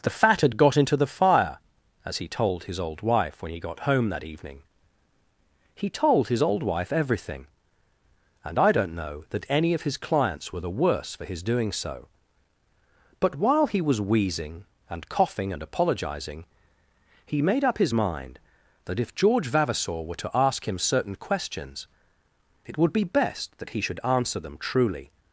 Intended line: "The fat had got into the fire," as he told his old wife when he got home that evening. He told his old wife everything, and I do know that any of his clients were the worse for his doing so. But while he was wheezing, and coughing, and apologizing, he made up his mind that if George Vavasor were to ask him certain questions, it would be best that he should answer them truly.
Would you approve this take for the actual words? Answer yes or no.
no